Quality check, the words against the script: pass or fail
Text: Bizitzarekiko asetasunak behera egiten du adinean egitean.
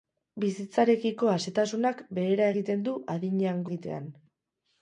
pass